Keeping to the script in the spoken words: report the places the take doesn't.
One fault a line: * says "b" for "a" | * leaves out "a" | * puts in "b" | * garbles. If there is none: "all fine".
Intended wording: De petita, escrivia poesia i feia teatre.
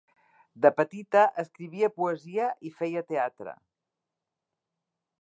all fine